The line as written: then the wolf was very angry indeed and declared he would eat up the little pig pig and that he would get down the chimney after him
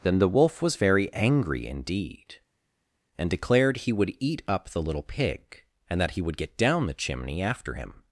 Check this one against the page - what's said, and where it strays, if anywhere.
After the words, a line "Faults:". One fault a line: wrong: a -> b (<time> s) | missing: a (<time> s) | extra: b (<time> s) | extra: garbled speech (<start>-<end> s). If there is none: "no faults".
then the wolf was very angry indeed and declared he would eat up the little pig and that he would get down the chimney after him
Faults:
missing: pig (5.6 s)